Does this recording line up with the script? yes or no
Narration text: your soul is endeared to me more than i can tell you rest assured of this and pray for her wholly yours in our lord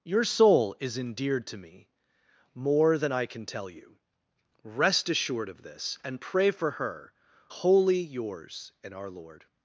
yes